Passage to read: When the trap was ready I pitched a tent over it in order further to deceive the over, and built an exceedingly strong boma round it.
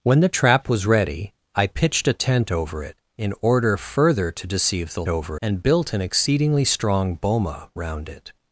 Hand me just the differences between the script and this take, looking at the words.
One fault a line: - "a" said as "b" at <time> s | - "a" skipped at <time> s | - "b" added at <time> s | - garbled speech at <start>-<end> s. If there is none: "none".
none